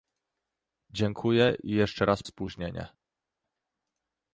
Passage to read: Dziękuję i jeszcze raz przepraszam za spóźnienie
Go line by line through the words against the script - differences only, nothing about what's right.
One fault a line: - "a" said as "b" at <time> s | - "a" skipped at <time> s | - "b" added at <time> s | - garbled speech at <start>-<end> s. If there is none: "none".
- "przepraszam za" skipped at 2.2 s